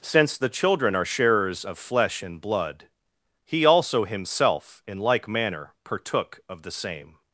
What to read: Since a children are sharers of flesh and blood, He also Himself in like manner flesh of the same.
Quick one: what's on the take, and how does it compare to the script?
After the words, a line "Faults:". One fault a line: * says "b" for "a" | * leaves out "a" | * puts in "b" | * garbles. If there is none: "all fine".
Since the children are sharers of flesh and blood, He also Himself in like manner partook of the same.
Faults:
* says "the" for "a"
* says "partook" for "flesh"